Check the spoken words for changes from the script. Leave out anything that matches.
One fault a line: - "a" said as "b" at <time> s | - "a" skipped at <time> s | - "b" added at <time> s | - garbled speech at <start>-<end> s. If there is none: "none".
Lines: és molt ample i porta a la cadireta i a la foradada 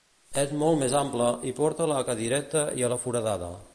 - "més" added at 0.8 s